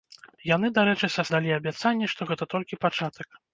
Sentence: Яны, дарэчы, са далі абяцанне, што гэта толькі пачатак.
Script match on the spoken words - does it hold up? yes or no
yes